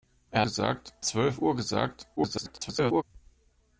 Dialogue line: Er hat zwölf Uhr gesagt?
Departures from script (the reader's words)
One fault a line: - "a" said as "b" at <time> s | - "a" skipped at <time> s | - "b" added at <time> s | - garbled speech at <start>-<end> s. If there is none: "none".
- "hat" said as "gesagt" at 0.4 s
- garbled speech at 2.2-3.0 s